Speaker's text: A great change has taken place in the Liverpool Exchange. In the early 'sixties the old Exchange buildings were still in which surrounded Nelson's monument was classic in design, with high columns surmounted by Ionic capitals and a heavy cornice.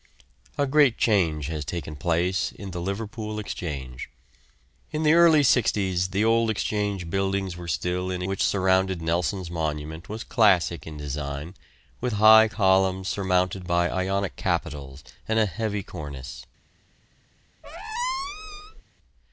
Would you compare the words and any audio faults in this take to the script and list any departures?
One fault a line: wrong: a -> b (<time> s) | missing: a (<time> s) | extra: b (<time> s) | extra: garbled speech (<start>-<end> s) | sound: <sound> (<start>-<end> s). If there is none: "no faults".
sound: squeak (17.6-18.8 s)